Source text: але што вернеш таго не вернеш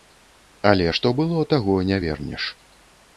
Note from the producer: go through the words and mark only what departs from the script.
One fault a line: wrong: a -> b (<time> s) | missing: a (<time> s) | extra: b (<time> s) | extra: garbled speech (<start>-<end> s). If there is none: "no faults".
wrong: вернеш -> было (1.2 s)